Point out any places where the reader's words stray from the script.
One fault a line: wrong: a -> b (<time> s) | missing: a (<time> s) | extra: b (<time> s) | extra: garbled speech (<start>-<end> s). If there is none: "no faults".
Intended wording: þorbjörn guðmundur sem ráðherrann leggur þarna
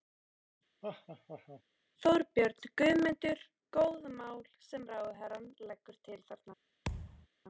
extra: góð mál (3.8 s)
extra: til (6.1 s)